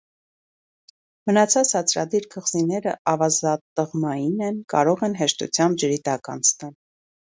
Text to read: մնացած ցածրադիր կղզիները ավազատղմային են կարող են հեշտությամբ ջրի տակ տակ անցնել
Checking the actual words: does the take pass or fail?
fail